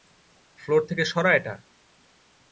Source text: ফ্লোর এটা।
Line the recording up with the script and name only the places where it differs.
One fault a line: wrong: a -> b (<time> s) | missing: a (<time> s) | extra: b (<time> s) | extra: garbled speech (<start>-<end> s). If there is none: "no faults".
extra: থেকে সরা (0.9 s)